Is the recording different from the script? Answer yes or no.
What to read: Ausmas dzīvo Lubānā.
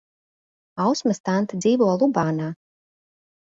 yes